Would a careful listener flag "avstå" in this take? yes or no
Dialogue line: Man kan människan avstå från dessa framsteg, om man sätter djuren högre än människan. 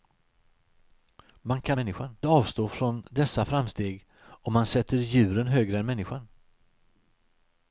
no